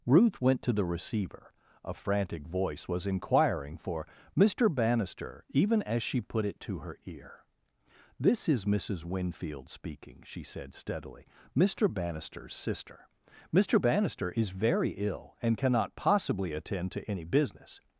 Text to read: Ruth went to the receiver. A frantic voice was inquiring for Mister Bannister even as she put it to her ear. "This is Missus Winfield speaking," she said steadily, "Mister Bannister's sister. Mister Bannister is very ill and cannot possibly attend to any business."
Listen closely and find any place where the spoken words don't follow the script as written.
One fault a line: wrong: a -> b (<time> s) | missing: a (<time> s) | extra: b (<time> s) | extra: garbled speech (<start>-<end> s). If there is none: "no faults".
no faults